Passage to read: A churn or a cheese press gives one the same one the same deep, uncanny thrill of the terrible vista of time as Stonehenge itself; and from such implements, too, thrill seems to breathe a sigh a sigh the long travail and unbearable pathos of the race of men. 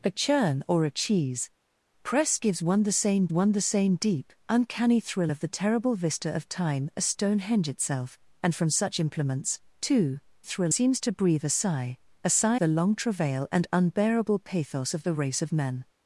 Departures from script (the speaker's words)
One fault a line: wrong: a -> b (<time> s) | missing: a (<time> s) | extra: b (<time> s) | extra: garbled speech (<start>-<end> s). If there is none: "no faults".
no faults